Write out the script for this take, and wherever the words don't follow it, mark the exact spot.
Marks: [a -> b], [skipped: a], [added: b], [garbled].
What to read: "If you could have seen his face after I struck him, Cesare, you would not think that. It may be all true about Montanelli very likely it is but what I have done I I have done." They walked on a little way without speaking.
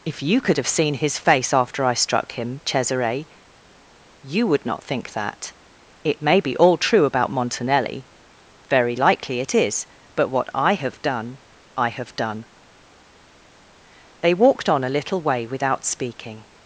"If you could have seen his face after I struck him, Cesare, you would not think that. It may be all true about Montanelli very likely it is but what I have done I [skipped: I] have done." They walked on a little way without speaking.